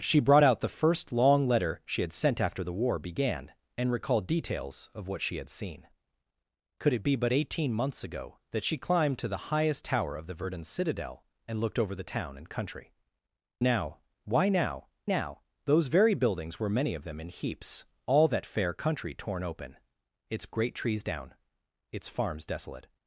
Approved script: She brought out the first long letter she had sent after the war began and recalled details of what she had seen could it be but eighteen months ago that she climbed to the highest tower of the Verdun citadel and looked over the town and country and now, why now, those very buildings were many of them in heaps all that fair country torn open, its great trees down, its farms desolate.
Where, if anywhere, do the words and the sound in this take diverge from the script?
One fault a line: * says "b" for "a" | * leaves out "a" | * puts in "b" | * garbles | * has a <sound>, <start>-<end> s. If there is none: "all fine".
* leaves out "and"
* puts in "now"